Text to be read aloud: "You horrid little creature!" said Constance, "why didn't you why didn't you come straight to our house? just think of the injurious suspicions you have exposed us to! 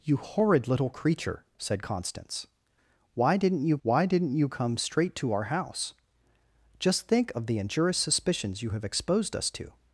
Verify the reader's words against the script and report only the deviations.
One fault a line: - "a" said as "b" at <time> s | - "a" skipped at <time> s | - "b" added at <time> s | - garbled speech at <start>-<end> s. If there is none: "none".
none